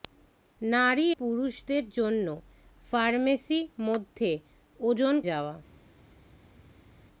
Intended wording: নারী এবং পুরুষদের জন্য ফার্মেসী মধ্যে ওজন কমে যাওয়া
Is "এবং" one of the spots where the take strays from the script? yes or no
yes